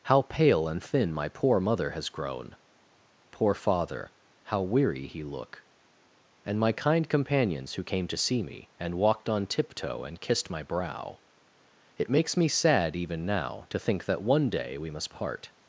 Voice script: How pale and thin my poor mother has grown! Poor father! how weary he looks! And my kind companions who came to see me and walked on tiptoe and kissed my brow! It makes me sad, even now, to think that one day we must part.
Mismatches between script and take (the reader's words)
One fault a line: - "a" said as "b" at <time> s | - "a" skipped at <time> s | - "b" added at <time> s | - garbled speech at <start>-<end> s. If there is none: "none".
- "looks" said as "look" at 5.2 s